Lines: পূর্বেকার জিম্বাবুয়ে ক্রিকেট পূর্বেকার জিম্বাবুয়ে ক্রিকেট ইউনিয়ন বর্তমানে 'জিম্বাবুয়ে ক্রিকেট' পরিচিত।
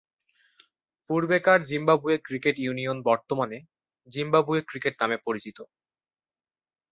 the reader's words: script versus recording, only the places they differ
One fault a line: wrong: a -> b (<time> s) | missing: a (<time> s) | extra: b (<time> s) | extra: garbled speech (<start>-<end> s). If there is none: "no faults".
missing: পূর্বেকার জিম্বাবুয়ে ক্রিকেট (2.5 s)
extra: নামে (5.0 s)